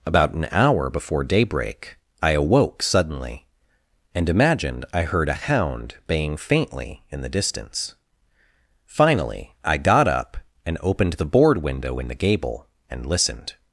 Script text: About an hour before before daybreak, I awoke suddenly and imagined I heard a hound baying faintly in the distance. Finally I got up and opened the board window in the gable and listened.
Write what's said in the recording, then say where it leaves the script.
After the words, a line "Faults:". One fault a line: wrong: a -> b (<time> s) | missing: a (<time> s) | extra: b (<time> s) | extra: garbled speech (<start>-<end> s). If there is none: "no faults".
About an hour before daybreak, I awoke suddenly and imagined I heard a hound baying faintly in the distance. Finally I got up and opened the board window in the gable and listened.
Faults:
missing: before (1.2 s)